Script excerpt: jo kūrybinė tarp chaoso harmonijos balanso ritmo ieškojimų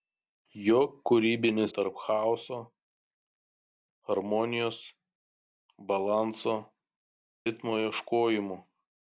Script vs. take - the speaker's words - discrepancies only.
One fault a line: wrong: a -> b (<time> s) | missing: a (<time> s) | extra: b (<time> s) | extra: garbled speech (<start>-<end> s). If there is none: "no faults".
no faults